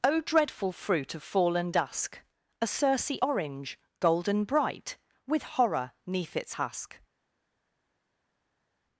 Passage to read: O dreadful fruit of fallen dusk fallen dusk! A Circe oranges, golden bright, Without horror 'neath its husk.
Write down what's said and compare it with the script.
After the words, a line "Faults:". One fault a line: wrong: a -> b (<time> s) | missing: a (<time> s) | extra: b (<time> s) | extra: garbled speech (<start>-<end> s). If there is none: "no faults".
O dreadful fruit of fallen dusk! A Circe orange, golden bright, With horror 'neath its husk.
Faults:
missing: fallen dusk (2.2 s)
wrong: oranges -> orange (3.2 s)
wrong: Without -> With (5.3 s)